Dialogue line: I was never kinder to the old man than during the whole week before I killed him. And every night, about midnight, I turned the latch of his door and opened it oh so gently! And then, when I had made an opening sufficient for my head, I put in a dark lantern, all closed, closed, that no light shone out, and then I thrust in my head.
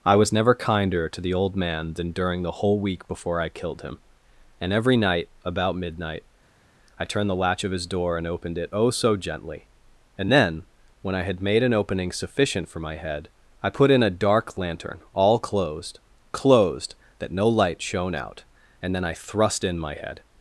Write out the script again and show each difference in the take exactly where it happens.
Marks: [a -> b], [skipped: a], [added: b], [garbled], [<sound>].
I was never kinder to the old man than during the whole week before I killed him. And every night, about midnight, I turned the latch of his door and opened it oh so gently! And then, when I had made an opening sufficient for my head, I put in a dark lantern, all closed, closed, that no light shone out, and then I thrust in my head.